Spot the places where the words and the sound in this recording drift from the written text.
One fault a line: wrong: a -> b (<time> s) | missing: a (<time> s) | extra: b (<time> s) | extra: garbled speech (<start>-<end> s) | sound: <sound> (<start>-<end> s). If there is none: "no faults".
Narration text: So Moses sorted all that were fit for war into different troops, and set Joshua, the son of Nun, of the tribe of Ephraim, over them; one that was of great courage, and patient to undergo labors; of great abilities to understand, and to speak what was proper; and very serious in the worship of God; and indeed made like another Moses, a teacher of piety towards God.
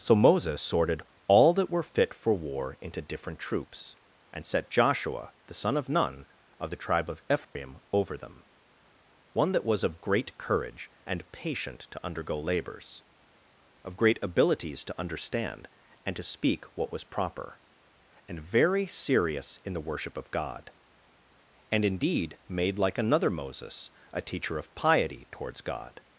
sound: dropout (7.4-7.6 s)